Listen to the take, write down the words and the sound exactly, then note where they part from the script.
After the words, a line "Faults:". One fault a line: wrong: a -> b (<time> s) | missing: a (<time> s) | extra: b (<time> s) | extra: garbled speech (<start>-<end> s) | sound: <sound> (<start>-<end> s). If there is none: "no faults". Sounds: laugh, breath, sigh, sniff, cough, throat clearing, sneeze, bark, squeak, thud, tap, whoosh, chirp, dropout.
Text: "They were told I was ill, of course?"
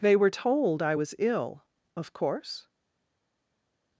"They were told I was ill, of course?"
Faults:
no faults